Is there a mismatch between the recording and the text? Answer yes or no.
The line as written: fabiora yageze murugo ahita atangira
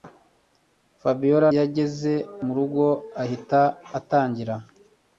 no